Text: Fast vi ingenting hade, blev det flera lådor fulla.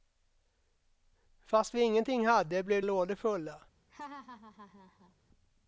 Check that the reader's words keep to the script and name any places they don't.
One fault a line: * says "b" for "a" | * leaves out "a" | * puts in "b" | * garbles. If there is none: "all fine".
* leaves out "det flera"